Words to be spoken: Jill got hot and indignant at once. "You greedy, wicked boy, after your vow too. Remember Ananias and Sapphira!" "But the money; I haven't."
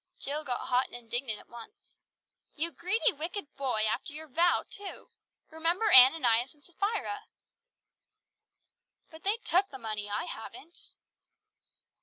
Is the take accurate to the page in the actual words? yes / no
no